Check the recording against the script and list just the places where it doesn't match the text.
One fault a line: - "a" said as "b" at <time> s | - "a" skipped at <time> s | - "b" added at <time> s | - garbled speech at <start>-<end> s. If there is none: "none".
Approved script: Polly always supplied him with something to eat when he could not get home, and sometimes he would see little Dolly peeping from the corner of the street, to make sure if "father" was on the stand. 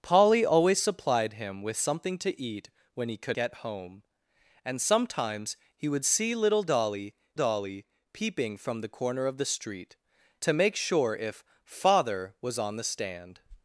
- "not" skipped at 3.4 s
- "Dolly" added at 7.3 s